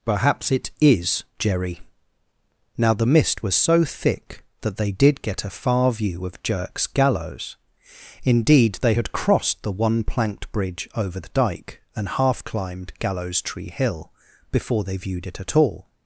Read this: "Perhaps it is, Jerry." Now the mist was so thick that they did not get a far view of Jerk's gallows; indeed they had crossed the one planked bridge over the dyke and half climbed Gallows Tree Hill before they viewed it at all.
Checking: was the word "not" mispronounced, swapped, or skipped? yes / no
yes